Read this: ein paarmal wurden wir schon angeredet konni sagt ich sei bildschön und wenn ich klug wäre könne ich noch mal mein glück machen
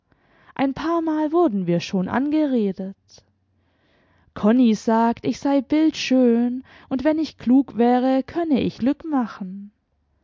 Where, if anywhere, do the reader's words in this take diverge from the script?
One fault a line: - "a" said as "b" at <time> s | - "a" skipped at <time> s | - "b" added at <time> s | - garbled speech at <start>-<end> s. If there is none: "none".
- "noch mal mein" skipped at 8.8 s